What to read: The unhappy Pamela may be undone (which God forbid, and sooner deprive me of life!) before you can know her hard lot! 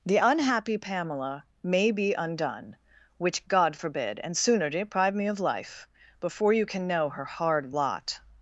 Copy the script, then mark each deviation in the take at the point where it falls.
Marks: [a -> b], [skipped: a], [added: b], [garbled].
The unhappy Pamela may be undone (which God forbid, and sooner deprive me of life!) before you can know her hard lot!